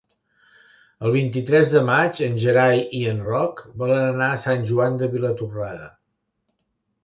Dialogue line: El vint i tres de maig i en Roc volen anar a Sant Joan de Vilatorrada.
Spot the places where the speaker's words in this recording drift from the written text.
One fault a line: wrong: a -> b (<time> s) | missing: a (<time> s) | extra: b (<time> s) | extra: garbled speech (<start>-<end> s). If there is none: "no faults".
extra: en Gerai (2.3 s)